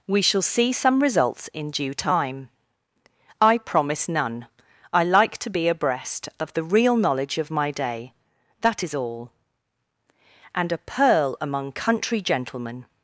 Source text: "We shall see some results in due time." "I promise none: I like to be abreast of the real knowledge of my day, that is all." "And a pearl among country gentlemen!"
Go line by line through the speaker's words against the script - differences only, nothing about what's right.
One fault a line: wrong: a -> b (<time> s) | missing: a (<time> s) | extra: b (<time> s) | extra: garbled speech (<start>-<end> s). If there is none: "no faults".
no faults